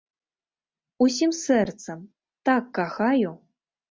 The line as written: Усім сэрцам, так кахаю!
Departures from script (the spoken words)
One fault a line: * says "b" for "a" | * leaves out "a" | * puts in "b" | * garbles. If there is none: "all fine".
all fine